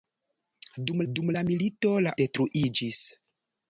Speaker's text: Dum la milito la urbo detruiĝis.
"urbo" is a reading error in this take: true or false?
true